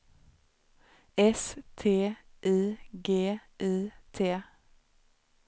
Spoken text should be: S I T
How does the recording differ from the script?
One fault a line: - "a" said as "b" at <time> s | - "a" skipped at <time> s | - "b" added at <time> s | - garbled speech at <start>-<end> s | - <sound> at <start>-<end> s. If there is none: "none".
- "T I G" added at 1.8 s